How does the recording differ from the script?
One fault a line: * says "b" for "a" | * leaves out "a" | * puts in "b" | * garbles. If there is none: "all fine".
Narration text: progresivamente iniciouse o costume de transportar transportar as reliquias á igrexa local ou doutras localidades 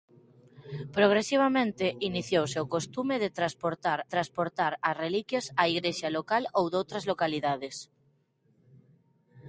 all fine